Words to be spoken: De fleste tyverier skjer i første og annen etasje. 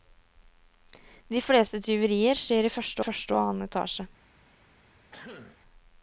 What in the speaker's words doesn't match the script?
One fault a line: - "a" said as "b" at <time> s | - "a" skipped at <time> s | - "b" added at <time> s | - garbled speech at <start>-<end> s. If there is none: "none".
- "første" added at 3.0 s